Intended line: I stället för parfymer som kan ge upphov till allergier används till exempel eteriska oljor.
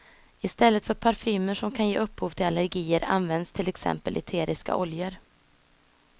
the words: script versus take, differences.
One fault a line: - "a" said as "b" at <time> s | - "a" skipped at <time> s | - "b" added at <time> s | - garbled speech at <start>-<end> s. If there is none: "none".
none